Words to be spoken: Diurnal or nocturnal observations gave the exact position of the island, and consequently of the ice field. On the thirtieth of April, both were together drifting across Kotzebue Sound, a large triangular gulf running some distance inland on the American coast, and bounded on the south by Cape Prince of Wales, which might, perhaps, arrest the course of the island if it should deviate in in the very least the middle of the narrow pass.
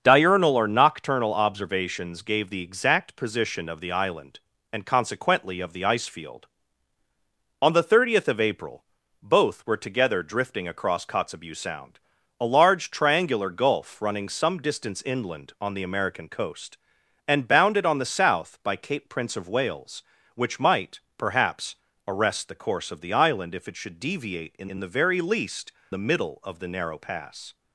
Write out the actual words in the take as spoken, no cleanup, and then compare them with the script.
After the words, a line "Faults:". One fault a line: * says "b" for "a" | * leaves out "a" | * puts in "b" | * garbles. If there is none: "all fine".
Diurnal or nocturnal observations gave the exact position of the island, and consequently of the ice field. On the thirtieth of April, both were together drifting across Kotzebue Sound, a large triangular gulf running some distance inland on the American coast, and bounded on the south by Cape Prince of Wales, which might, perhaps, arrest the course of the island if it should deviate in in the very least the middle of the narrow pass.
Faults:
all fine